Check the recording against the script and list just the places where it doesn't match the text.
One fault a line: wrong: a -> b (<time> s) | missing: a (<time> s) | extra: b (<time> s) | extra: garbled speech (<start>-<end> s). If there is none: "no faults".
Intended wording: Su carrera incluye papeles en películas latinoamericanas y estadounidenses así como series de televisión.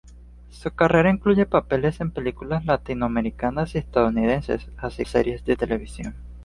missing: como (5.0 s)